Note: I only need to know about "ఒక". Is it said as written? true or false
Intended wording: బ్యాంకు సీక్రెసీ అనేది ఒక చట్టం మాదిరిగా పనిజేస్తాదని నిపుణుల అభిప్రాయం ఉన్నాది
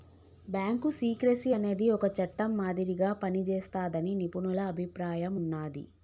true